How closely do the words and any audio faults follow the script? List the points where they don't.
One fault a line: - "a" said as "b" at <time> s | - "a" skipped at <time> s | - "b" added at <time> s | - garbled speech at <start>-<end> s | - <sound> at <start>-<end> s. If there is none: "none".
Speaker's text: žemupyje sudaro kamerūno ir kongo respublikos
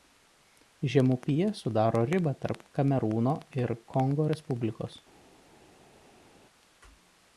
- "ribą tarp" added at 2.1 s